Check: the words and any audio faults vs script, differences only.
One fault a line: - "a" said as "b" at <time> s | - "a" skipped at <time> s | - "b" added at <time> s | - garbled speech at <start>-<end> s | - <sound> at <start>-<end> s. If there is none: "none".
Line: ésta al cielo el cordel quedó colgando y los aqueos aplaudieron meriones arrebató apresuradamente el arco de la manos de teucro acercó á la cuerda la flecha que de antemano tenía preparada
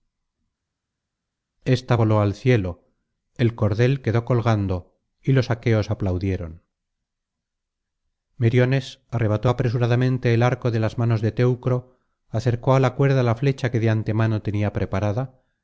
- "voló" added at 2.0 s
- "la" said as "las" at 10.8 s